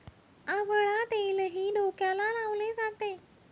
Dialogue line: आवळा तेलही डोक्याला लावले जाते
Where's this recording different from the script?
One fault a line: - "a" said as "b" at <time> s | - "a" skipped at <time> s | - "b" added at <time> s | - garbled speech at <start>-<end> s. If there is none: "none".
none